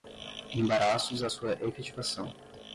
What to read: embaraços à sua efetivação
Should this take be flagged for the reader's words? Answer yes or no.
no